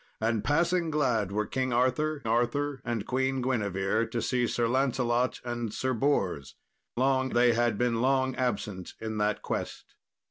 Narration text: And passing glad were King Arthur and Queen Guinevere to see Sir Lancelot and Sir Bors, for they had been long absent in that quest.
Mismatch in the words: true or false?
true